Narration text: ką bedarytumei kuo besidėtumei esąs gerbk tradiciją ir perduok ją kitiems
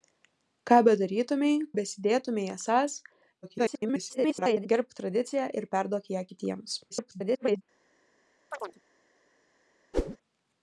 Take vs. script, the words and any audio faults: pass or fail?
fail